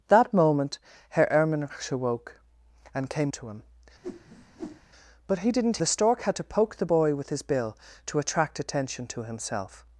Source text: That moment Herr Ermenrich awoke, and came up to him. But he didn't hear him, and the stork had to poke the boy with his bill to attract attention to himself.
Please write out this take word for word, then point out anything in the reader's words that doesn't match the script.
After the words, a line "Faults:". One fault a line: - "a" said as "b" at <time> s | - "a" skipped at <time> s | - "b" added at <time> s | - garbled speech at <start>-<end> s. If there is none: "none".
That moment Herr Ermenrich awoke, and came to him. But he didn't the stork had to poke the boy with his bill to attract attention to himself.
Faults:
- "up" skipped at 3.3 s
- "hear him and" skipped at 5.8 s